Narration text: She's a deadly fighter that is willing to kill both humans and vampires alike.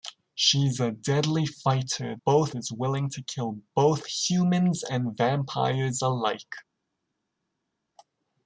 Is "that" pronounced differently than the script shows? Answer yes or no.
yes